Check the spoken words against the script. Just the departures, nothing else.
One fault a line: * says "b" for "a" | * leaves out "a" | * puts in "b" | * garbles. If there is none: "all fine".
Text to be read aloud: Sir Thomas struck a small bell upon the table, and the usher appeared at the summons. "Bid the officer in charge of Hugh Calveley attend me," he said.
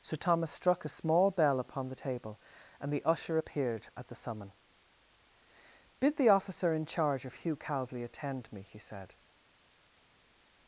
* says "summon" for "summons"